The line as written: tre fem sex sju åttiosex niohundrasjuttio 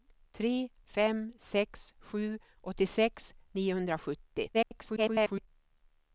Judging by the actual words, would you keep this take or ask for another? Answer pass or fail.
fail